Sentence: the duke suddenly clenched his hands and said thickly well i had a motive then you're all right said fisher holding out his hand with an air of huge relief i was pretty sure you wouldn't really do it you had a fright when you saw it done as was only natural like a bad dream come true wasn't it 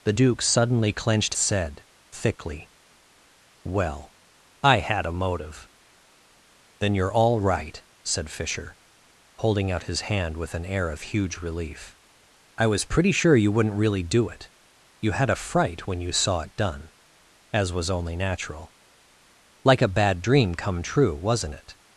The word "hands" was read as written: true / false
false